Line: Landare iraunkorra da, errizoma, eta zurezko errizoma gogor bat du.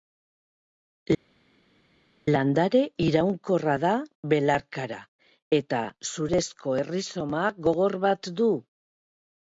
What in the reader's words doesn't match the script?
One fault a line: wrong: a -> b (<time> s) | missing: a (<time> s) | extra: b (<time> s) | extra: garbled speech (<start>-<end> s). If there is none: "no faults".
wrong: errizoma -> belarkara (4.3 s)